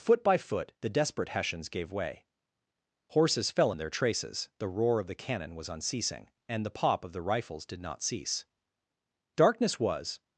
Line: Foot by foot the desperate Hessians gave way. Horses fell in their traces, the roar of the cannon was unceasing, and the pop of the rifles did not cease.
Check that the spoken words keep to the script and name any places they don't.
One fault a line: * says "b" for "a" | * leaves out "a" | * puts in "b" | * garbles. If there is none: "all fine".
* puts in "Darkness was"